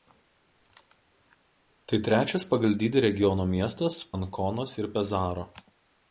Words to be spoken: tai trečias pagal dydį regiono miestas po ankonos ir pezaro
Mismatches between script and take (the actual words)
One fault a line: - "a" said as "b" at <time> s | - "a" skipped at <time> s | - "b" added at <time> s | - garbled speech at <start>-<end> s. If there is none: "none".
- "po" skipped at 4.0 s